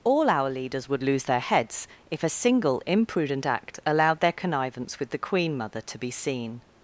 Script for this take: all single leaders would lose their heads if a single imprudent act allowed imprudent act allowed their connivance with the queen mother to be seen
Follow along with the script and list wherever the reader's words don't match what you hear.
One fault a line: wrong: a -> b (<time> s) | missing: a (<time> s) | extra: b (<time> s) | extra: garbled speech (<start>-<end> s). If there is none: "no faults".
wrong: single -> our (0.3 s)
missing: imprudent act allowed (4.2 s)